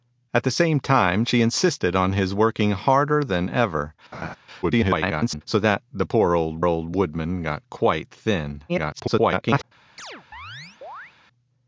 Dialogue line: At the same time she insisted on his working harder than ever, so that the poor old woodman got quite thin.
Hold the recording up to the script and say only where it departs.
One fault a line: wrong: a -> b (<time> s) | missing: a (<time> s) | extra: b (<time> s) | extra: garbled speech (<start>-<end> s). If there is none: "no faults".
extra: garbled speech (4.6-5.4 s)
extra: old (6.6 s)
extra: garbled speech (8.7-9.6 s)